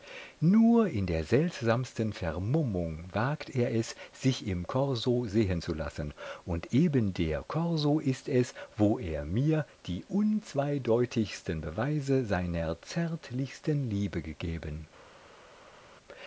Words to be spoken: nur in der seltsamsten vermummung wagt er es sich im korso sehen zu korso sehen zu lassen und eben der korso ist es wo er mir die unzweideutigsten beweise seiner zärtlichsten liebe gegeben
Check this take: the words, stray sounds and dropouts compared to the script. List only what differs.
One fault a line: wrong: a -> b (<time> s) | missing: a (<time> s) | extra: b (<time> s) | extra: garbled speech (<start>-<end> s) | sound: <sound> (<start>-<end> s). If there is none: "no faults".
missing: korso sehen zu (5.7 s)